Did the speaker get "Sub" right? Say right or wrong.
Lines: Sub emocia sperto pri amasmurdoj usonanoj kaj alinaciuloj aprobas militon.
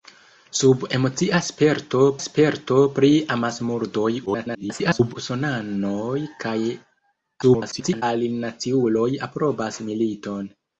right